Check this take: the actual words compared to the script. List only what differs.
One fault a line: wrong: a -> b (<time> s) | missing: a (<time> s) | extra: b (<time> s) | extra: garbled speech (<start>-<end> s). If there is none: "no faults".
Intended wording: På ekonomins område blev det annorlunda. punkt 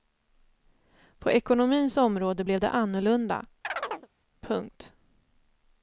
no faults